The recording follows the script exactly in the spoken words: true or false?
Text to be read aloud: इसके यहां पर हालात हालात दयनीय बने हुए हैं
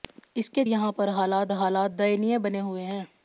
true